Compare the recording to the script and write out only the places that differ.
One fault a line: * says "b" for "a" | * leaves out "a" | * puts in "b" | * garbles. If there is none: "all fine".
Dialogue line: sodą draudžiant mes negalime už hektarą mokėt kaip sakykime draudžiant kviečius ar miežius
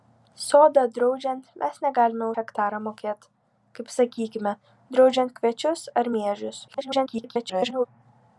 * leaves out "už"
* garbles